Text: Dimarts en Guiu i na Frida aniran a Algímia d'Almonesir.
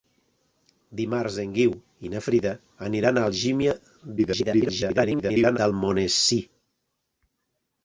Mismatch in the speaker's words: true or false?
true